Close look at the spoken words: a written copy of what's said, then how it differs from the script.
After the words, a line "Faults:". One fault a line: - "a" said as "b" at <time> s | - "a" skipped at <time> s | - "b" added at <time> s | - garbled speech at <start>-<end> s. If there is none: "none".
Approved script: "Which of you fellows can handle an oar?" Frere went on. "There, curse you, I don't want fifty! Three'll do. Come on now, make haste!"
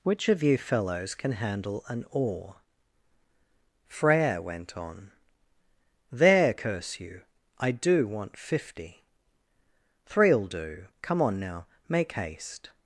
"Which of you fellows can handle an oar?" Frere went on. "There, curse you, I do want fifty! Three'll do. Come on now, make haste!"
Faults:
- "don't" said as "do" at 7.7 s